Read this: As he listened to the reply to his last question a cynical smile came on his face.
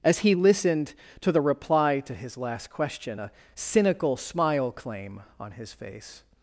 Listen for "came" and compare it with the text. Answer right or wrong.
wrong